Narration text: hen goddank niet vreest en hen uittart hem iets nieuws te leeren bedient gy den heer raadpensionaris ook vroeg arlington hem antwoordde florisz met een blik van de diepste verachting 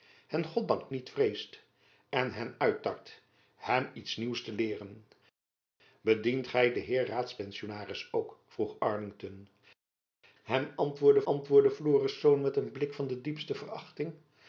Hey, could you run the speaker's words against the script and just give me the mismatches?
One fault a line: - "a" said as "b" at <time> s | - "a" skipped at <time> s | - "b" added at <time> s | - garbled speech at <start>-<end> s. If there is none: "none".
- "antwoordde" added at 11.2 s